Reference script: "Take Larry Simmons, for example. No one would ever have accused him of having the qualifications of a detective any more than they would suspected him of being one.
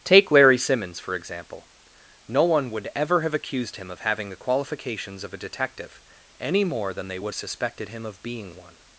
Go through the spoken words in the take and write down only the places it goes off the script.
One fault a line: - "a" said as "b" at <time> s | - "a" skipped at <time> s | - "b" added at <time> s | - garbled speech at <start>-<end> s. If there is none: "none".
none